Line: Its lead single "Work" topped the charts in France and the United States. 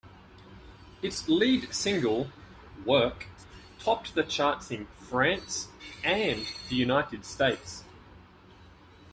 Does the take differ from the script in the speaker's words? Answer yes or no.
no